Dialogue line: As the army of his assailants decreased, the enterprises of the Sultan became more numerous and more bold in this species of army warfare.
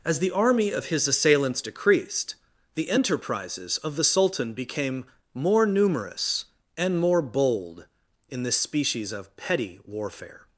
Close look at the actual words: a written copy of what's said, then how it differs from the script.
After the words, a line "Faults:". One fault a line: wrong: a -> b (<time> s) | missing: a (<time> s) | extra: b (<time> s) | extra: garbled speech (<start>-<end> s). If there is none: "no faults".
As the army of his assailants decreased, the enterprises of the Sultan became more numerous and more bold in this species of petty warfare.
Faults:
wrong: army -> petty (9.3 s)